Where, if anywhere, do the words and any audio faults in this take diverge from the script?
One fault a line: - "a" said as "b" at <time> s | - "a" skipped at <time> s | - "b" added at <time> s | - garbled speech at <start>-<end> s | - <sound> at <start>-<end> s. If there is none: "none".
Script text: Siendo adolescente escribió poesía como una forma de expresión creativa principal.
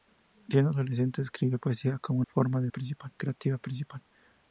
- "una" skipped at 2.2 s
- "expresión" said as "principal" at 2.7 s